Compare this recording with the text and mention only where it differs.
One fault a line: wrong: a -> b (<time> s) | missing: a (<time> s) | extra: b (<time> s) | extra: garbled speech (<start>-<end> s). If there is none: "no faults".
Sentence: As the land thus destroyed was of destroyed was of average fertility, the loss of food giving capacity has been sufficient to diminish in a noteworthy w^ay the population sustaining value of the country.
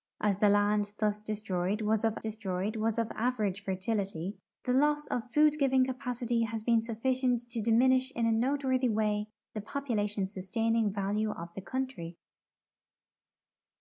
no faults